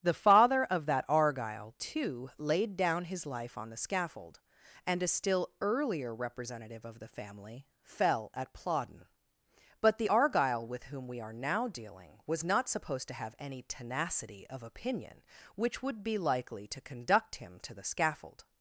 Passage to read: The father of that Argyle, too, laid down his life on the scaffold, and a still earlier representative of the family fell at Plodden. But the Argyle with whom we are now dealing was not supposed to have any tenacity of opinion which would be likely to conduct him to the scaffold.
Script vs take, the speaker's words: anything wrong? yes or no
no